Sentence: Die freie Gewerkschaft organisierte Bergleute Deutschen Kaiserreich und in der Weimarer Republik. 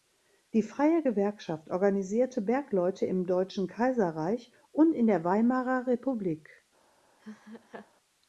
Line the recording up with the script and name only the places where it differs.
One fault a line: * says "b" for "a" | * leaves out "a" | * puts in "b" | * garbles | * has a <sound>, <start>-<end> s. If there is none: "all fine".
* puts in "im"
* has a laugh, 7.2-7.9 s